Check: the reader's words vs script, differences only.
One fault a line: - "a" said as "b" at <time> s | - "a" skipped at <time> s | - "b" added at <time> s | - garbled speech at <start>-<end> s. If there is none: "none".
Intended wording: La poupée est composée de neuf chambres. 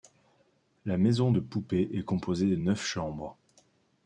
- "maison de" added at 1.0 s